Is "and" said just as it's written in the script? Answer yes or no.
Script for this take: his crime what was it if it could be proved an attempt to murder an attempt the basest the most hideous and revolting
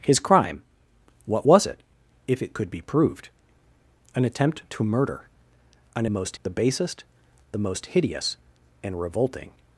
yes